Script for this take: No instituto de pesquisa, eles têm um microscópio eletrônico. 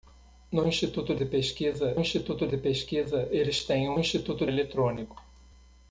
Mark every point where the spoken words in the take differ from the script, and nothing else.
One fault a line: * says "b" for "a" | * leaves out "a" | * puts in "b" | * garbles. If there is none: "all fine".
* puts in "instituto de pesquisa"
* says "instituto" for "microscópio"